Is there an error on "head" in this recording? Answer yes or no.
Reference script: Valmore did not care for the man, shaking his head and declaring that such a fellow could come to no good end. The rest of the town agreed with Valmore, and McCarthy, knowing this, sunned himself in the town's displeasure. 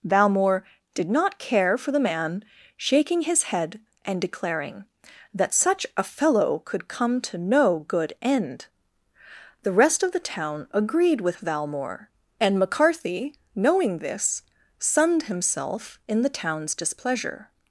no